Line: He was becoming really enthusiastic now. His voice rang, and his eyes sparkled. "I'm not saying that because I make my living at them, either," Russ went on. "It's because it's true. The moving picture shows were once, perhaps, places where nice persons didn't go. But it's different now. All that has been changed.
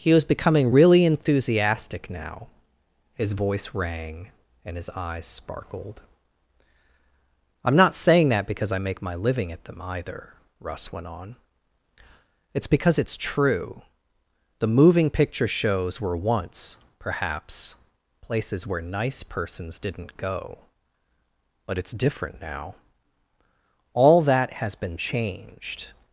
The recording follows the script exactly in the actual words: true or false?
true